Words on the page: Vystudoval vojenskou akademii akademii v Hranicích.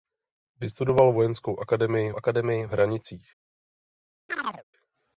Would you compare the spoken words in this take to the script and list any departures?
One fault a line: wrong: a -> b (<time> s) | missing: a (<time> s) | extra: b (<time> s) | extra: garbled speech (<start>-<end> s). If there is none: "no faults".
no faults